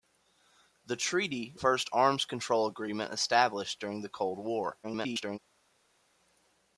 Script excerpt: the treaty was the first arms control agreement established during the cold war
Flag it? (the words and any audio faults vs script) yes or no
yes